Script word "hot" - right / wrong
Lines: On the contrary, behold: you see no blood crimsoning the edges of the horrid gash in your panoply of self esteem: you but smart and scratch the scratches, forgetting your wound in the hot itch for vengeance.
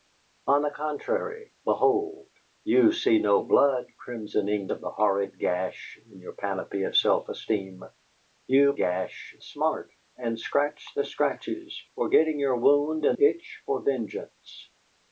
wrong